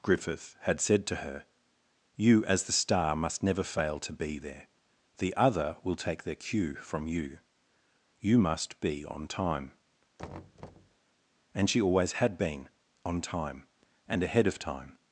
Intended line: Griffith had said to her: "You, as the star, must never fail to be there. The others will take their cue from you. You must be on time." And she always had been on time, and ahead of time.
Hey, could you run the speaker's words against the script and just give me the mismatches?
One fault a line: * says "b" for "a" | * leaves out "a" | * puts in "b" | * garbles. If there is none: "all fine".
* says "other" for "others"